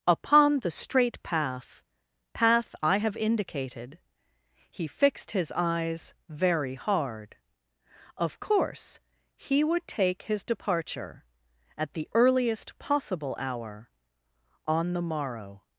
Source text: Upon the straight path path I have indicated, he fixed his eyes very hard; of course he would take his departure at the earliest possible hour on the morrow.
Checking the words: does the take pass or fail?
pass